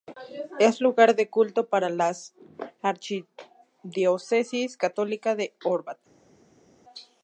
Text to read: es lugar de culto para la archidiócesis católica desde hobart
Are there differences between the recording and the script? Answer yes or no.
yes